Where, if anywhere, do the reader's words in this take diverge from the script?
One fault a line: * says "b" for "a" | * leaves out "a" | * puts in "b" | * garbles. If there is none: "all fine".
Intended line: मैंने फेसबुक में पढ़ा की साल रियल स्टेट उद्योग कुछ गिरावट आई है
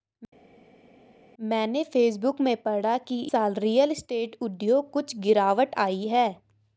all fine